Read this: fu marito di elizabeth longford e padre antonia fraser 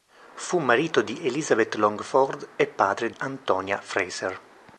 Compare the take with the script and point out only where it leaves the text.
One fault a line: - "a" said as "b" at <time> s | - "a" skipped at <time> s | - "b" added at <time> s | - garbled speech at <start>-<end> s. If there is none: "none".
none